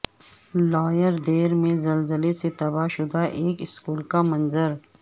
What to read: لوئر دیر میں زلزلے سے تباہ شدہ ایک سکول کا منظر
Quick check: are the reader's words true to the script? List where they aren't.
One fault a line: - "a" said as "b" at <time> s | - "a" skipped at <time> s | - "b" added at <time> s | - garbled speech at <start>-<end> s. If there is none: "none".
none